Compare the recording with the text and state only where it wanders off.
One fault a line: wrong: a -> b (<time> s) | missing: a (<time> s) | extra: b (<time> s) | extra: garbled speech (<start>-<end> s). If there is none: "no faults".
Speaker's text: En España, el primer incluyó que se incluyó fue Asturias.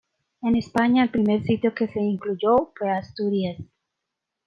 wrong: incluyó -> sitio (1.4 s)